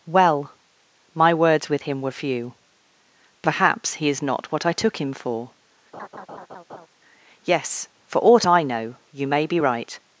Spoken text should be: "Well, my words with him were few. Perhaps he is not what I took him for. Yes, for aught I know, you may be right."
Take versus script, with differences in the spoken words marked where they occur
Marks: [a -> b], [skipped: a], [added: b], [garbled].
"Well, my words with him were few. Perhaps he is not what I took him for. Yes, for aught I know, you may be right."